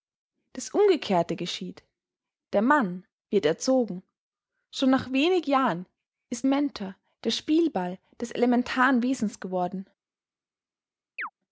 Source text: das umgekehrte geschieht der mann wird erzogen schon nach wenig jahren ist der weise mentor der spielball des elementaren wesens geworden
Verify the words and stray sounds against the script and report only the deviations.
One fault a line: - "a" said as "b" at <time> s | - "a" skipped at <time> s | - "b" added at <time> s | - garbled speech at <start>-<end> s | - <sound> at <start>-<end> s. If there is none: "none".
- "der weise" skipped at 6.5 s
- chirp at 11.2-11.3 s